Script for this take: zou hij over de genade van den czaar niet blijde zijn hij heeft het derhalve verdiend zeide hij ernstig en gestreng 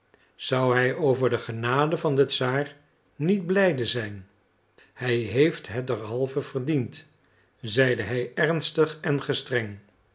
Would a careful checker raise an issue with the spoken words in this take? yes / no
no